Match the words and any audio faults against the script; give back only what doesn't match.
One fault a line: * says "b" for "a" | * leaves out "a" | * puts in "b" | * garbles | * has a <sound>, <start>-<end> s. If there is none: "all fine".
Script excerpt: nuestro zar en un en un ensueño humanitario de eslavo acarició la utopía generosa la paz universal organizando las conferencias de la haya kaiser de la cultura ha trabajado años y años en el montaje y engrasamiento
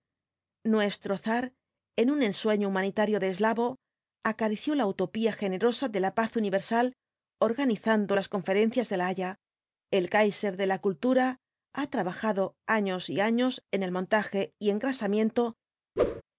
* leaves out "en un"
* puts in "de"
* puts in "el"
* has a whoosh, 16.0-16.2 s